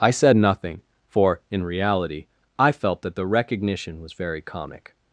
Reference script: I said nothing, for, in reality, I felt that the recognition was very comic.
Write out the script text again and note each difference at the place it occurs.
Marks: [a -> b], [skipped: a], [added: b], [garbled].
I said nothing, for, in reality, I felt that the recognition was very comic.